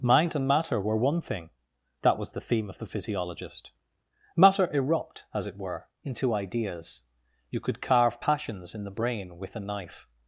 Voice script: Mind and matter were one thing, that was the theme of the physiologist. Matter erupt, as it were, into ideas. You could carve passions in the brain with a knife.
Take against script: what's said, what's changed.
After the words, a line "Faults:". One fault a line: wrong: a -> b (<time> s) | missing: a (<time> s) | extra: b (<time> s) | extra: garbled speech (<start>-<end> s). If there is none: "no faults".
Mind and matter were one thing, that was the theme of the physiologist. Matter erupt, as it were, into ideas. You could carve passions in the brain with a knife.
Faults:
no faults